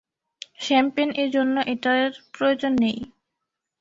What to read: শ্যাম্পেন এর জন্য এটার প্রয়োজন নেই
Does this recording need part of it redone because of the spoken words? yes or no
no